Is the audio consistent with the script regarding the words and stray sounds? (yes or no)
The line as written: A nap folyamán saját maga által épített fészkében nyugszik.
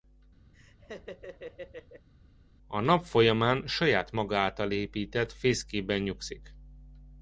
no